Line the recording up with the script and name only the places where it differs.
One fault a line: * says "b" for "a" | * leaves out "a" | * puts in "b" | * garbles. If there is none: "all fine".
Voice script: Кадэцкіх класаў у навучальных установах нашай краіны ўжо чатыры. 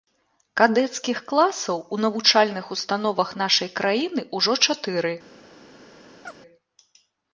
all fine